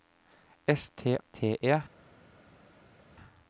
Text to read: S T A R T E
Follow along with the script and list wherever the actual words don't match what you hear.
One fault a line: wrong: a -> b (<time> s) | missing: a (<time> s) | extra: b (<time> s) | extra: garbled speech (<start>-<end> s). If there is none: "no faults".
missing: A R (1.1 s)